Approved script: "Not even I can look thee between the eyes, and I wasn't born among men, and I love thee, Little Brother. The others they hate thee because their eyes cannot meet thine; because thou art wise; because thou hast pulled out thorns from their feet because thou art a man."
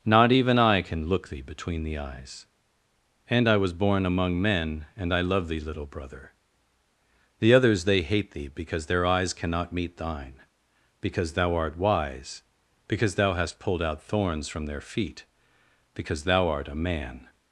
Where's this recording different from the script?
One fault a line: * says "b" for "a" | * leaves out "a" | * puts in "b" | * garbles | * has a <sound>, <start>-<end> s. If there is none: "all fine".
* says "was" for "wasn't"